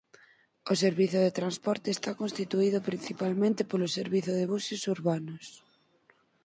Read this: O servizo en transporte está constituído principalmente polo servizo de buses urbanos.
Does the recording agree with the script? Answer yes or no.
no